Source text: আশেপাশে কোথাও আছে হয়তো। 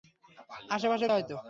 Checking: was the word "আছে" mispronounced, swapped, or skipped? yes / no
yes